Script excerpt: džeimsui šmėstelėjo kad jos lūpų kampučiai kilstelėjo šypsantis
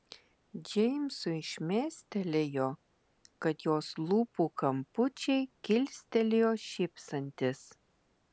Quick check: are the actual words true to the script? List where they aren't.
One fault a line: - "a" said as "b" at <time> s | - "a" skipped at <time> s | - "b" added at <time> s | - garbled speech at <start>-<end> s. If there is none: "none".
none